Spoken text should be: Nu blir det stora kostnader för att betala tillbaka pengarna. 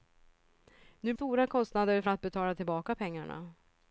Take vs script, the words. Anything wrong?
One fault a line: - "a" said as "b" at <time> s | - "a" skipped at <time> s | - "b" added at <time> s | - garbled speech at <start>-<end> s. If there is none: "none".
- "blir det" skipped at 1.1 s